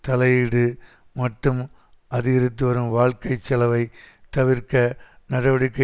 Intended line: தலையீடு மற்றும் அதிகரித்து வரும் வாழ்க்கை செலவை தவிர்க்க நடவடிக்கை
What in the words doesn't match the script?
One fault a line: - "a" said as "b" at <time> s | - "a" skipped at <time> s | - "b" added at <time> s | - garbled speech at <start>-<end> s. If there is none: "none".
none